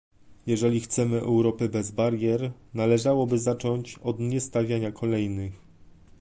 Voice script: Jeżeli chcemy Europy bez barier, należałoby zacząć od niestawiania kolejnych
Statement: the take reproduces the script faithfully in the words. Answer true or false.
true